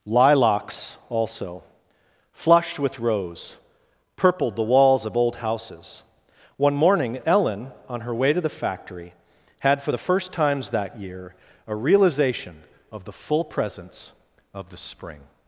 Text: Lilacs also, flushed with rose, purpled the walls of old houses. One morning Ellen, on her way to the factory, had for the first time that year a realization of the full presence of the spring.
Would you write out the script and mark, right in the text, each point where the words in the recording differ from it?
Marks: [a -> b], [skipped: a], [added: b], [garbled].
Lilacs also, flushed with rose, purpled the walls of old houses. One morning Ellen, on her way to the factory, had for the first [time -> times] that year a realization of the full presence of the spring.